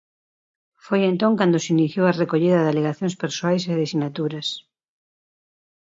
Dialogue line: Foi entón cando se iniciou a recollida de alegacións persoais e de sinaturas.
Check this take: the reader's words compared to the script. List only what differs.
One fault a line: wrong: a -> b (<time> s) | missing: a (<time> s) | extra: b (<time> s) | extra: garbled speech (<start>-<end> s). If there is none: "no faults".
no faults